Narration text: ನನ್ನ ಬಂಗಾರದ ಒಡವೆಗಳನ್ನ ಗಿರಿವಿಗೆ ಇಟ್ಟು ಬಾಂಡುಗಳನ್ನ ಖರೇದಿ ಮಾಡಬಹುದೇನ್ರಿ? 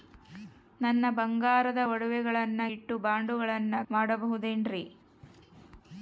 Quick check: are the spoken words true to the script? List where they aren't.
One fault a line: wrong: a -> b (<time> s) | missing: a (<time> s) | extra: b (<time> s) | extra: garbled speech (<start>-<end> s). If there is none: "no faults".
missing: ಗಿರಿವಿಗೆ (2.6 s)
missing: ಖರೇದಿ (3.7 s)